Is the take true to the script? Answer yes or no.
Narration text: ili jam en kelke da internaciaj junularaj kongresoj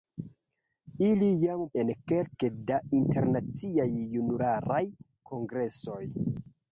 yes